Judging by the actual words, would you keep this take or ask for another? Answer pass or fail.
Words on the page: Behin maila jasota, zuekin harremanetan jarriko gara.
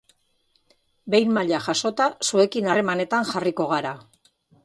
pass